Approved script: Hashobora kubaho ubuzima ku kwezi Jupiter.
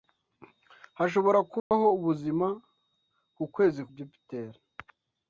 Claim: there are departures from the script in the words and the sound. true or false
true